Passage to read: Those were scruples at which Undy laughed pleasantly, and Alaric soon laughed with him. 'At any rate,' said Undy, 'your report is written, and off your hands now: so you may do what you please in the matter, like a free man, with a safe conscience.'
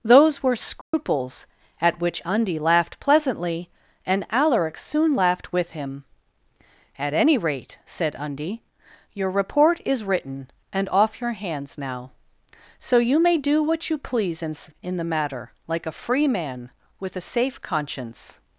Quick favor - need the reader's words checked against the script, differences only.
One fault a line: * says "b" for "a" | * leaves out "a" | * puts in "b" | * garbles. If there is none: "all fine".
* puts in "in"